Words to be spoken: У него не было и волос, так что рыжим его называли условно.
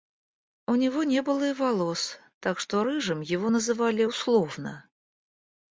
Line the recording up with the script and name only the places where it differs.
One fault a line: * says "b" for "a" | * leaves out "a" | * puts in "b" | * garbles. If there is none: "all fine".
all fine